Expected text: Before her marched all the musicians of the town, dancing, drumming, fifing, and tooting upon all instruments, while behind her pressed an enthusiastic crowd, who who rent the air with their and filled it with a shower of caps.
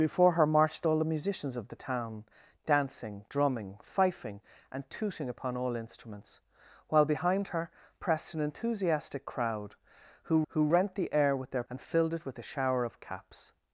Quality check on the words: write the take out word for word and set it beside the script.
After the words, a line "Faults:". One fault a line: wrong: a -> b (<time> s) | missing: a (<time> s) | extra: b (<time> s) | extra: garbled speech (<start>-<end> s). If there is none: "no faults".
Before her marched all the musicians of the town, dancing, drumming, fifing, and tooting upon all instruments, while behind her pressed an enthusiastic crowd, who who rent the air with their and filled it with a shower of caps.
Faults:
no faults